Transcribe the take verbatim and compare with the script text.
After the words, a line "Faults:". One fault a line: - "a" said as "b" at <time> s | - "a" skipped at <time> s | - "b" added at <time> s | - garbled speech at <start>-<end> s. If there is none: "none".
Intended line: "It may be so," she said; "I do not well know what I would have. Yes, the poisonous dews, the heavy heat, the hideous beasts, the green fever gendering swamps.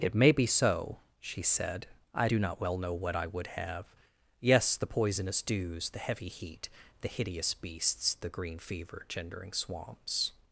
"It may be so," she said; "I do not well know what I would have. Yes, the poisonous dews, the heavy heat, the hideous beasts, the green fever gendering swamps.
Faults:
none